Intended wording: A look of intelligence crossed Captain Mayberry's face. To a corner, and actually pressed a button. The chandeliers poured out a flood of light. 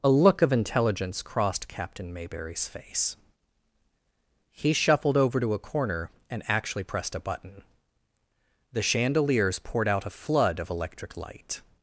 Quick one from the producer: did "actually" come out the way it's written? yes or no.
yes